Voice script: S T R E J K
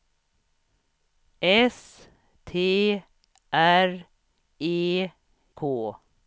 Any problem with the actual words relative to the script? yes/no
yes